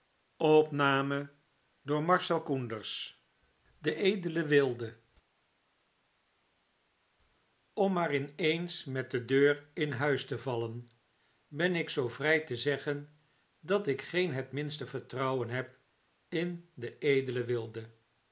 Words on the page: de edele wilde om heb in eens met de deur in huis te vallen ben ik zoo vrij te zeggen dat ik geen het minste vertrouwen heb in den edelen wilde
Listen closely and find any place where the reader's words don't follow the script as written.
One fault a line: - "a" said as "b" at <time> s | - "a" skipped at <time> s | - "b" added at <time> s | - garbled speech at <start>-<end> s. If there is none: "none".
- "heb" said as "maar" at 7.9 s